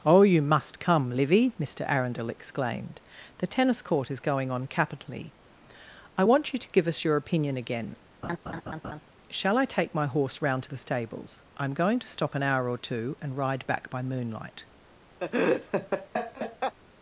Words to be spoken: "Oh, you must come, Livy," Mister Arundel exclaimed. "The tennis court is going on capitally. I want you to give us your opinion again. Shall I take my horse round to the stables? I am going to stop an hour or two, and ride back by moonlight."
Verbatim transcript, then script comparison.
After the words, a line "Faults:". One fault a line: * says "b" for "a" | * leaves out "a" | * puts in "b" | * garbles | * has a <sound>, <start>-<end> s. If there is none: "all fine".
"Oh, you must come, Livy," Mister Arundel exclaimed. "The tennis court is going on capitally. I want you to give us your opinion again. Shall I take my horse round to the stables? I am going to stop an hour or two, and ride back by moonlight."
Faults:
* has a laugh, 8.2-9.0 s
* has a laugh, 15.2-16.8 s